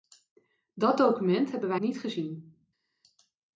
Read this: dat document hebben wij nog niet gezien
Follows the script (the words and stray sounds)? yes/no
no